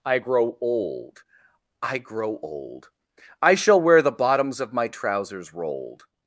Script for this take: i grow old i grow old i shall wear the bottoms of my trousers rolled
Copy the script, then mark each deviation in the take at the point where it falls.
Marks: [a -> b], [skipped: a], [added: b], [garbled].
i grow old i grow old i shall wear the bottoms of my trousers rolled